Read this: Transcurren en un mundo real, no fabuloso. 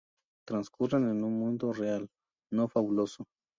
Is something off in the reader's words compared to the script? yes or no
no